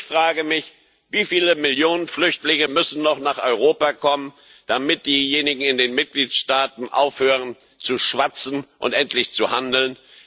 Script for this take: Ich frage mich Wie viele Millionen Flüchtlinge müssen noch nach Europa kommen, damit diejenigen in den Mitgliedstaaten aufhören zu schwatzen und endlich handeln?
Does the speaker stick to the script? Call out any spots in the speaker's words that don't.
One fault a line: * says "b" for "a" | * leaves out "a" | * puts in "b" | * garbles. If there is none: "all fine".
all fine